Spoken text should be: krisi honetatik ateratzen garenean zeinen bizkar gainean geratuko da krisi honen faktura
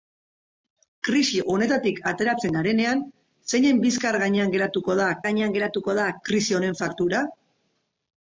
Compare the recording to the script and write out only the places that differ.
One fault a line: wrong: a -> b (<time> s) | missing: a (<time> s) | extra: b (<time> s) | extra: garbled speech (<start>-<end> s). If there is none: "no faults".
extra: gainean geratuko da (5.3 s)